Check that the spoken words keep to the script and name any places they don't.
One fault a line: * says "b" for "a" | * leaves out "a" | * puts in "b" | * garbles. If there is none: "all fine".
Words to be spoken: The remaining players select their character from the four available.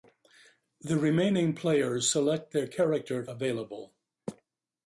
* leaves out "from the four"